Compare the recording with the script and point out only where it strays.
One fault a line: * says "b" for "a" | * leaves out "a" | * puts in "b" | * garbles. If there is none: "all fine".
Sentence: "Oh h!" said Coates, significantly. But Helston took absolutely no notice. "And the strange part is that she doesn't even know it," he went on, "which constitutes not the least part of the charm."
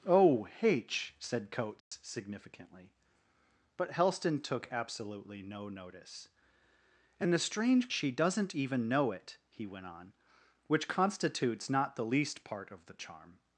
* leaves out "part is that"